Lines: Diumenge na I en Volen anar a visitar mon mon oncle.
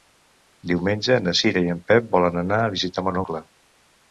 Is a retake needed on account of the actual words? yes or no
yes